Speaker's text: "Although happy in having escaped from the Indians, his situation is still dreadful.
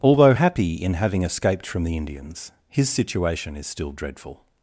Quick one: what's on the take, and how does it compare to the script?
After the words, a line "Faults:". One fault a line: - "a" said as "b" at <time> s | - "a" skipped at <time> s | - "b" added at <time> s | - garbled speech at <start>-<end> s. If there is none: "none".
"Although happy in having escaped from the Indians, his situation is still dreadful.
Faults:
none